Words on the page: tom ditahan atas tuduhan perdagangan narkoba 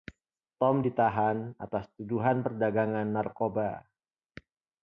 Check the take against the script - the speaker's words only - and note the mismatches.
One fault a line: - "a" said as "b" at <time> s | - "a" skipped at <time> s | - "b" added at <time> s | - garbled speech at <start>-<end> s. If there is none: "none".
none